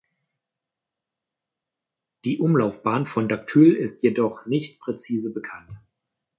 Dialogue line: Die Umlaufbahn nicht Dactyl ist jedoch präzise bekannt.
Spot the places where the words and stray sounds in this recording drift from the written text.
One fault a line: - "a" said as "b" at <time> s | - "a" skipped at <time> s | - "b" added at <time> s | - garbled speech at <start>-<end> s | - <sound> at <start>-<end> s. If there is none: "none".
- "nicht" said as "von" at 3.1 s
- "nicht" added at 4.4 s